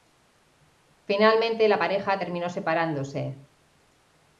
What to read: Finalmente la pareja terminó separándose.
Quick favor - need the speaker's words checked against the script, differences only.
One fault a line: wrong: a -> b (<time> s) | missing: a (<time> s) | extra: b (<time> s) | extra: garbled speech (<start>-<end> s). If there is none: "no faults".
no faults